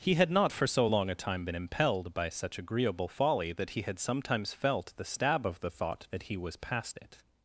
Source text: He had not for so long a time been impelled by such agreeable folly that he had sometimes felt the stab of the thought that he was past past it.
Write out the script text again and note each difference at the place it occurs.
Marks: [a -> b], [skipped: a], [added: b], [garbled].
He had not for so long a time been impelled by such agreeable folly that he had sometimes felt the stab of the thought that he was past [skipped: past] it.